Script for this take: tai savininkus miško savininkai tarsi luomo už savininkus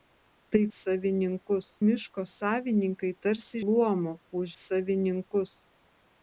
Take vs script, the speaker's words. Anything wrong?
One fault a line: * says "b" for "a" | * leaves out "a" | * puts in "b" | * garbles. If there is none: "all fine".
all fine